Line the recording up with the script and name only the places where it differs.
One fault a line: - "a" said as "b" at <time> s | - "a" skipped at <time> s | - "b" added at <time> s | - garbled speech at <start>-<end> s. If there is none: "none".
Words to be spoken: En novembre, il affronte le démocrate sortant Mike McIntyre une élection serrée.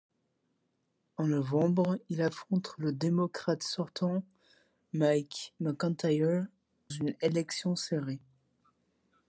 none